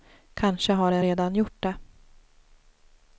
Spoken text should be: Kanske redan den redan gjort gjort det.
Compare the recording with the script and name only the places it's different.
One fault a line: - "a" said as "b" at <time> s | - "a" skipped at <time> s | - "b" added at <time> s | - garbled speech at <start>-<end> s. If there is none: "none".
- "redan" said as "har" at 0.7 s
- "gjort" skipped at 1.6 s